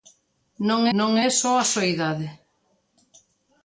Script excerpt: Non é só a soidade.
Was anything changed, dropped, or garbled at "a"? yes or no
no